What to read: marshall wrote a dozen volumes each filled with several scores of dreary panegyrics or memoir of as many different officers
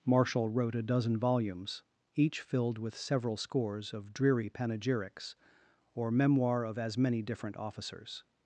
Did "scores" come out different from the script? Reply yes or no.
no